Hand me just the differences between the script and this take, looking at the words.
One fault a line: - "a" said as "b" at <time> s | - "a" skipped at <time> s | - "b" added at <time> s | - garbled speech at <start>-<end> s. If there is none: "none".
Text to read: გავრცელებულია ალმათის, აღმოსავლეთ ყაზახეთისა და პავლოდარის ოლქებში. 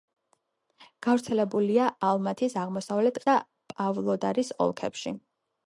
- "ყაზახეთისა" skipped at 3.2 s